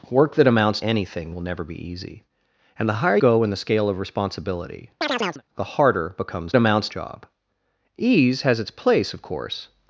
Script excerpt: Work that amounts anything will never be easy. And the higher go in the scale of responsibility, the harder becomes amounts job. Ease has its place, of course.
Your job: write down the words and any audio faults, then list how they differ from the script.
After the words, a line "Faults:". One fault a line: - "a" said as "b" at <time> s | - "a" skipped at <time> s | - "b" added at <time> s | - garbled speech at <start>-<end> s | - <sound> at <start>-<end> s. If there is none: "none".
Work that amounts anything will never be easy. And the higher go in the scale of responsibility, the harder becomes amounts job. Ease has its place, of course.
Faults:
- chirp at 5.0-5.4 s